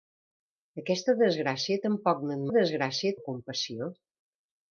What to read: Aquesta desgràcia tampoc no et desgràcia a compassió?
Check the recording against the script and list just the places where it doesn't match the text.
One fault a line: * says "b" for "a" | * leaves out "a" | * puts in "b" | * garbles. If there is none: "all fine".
all fine